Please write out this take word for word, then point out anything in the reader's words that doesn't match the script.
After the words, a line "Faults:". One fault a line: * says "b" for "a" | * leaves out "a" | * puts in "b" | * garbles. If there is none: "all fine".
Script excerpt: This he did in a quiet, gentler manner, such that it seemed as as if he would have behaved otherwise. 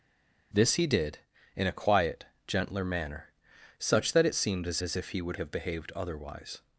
This he did in a quiet, gentler manner, such that it seemed as as if he would have behaved otherwise.
Faults:
all fine